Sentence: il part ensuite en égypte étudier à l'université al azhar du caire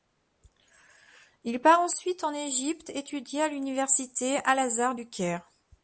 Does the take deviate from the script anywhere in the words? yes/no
no